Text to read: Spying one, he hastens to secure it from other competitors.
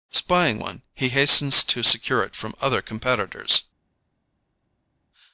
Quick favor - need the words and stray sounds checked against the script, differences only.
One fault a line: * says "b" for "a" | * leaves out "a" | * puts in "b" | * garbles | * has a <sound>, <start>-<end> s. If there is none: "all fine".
all fine